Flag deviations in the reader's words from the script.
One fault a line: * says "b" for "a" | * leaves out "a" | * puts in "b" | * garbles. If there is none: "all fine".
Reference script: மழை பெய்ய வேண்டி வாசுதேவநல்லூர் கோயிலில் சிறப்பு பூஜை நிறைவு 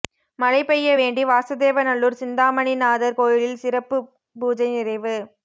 * puts in "சிந்தாமணிநாதர்"